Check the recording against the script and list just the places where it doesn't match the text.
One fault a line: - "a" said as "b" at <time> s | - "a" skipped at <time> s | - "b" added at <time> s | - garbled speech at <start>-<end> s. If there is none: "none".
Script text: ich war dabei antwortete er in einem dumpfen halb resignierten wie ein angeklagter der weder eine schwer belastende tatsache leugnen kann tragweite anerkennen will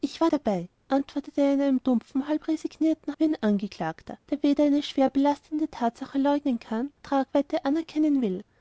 none